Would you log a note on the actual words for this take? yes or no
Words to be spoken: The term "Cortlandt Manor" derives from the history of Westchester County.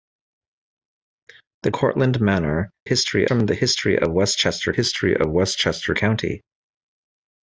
yes